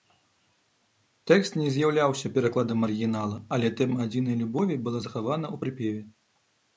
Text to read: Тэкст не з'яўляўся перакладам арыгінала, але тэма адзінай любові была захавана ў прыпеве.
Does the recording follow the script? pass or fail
pass